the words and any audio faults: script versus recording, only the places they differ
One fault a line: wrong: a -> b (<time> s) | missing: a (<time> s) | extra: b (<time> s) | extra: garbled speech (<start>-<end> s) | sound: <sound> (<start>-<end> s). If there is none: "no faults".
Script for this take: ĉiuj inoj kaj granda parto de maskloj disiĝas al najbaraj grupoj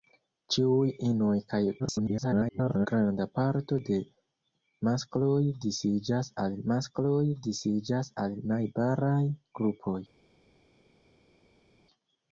extra: garbled speech (1.8-2.9 s)
extra: maskloj disiĝas al (6.7 s)